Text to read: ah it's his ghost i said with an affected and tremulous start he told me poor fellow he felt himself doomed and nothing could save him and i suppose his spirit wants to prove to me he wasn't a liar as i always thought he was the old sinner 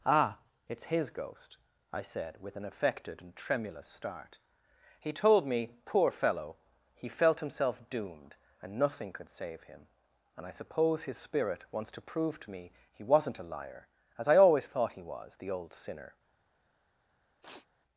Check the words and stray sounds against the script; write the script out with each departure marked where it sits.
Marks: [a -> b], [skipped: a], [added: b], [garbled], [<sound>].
ah it's his ghost i said with an affected and tremulous start he told me poor fellow he felt himself doomed and nothing could save him and i suppose his spirit wants to prove to me he wasn't a liar as i always thought he was the old sinner [sniff]